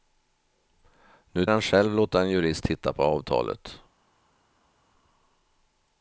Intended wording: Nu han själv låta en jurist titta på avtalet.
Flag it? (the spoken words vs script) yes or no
no